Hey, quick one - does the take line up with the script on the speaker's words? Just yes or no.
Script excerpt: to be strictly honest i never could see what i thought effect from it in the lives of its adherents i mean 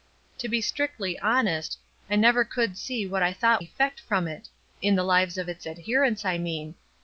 yes